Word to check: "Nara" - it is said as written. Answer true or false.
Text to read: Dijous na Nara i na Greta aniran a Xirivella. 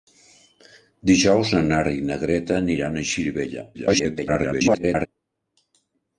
true